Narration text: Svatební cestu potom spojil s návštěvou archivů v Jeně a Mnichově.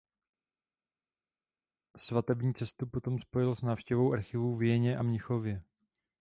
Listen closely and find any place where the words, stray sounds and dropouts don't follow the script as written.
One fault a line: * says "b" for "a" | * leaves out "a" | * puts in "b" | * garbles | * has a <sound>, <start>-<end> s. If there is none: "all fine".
all fine